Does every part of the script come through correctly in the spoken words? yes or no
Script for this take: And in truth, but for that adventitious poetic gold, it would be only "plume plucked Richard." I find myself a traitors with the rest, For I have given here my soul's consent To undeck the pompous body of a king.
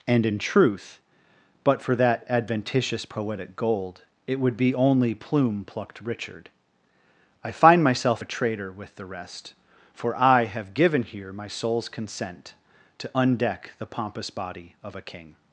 no